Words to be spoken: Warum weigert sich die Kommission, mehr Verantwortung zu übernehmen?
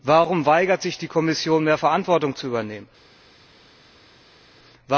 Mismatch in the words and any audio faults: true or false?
false